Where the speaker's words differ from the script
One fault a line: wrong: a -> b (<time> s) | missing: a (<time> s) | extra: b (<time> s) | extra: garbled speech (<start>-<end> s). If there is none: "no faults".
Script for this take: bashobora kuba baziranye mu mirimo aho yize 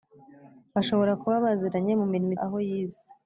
no faults